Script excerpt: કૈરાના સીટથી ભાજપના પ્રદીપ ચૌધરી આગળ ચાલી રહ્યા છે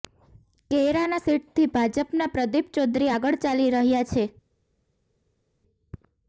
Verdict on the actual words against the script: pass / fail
pass